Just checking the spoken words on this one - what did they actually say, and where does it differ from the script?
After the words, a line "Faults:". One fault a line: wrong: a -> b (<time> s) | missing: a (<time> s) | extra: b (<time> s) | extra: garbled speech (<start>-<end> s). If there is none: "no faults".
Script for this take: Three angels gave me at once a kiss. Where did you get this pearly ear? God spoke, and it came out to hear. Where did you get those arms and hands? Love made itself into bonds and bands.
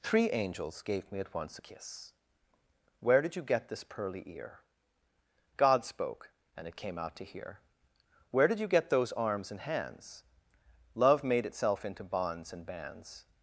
Three angels gave me at once a kiss. Where did you get this pearly ear? God spoke, and it came out to hear. Where did you get those arms and hands? Love made itself into bonds and bands.
Faults:
no faults